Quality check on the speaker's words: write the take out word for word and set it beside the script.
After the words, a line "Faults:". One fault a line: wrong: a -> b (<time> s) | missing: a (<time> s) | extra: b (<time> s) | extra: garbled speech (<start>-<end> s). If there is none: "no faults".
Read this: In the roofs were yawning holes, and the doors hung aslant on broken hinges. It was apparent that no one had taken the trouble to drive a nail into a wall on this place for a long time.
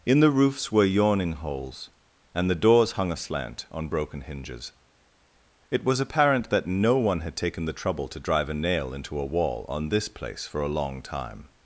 In the roofs were yawning holes, and the doors hung aslant on broken hinges. It was apparent that no one had taken the trouble to drive a nail into a wall on this place for a long time.
Faults:
no faults